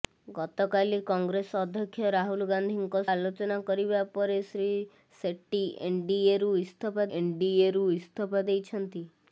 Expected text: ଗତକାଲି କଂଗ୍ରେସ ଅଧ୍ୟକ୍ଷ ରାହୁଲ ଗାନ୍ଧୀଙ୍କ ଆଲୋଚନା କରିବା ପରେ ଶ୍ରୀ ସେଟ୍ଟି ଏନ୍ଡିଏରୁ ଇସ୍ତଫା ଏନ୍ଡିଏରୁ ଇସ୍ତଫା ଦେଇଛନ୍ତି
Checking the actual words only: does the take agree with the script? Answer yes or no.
yes